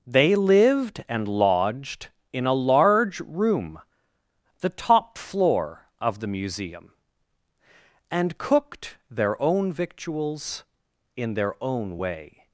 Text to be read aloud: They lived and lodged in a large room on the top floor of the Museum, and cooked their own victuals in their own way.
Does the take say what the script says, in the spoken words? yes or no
no